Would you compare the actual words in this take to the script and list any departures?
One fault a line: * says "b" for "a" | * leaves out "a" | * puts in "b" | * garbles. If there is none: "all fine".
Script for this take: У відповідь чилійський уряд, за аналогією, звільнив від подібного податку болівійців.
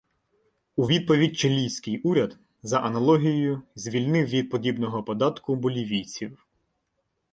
all fine